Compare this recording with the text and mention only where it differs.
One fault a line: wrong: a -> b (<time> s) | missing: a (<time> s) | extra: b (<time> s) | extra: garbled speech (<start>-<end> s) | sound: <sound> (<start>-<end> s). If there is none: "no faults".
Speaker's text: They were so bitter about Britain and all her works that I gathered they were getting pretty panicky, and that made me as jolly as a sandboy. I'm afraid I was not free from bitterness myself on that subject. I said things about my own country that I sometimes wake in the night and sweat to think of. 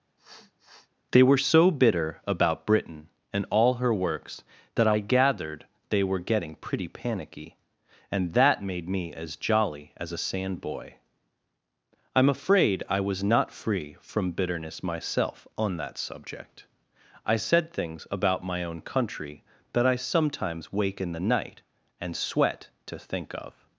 sound: sniff (0.2-0.9 s)